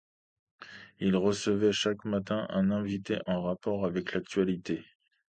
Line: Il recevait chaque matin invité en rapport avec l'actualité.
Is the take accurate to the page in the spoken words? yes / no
no